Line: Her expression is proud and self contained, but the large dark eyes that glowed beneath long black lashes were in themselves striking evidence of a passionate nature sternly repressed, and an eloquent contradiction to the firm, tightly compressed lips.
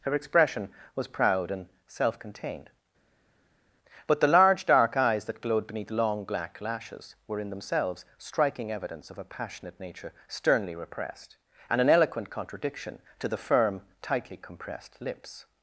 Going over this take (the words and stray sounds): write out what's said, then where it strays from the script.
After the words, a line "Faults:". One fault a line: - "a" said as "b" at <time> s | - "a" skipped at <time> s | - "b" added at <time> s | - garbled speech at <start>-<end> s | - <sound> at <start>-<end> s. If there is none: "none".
Her expression was proud and self contained, but the large dark eyes that glowed beneath long black lashes were in themselves striking evidence of a passionate nature sternly repressed, and an eloquent contradiction to the firm, tightly compressed lips.
Faults:
- "is" said as "was" at 1.0 s